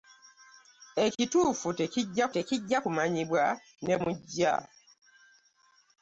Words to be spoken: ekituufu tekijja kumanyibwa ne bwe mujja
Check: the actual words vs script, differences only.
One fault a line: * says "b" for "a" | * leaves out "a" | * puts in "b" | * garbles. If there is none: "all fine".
* puts in "tekijja"
* leaves out "bwe"